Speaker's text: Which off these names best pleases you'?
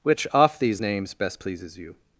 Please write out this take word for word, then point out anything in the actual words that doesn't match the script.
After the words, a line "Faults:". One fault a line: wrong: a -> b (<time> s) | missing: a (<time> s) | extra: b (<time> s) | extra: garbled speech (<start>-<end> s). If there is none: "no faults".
Which off these names best pleases you'?
Faults:
no faults